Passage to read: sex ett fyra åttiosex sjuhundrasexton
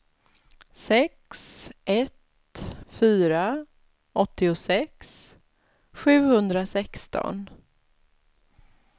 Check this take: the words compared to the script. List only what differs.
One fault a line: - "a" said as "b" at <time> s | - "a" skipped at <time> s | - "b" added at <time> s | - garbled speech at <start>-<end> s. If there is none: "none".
none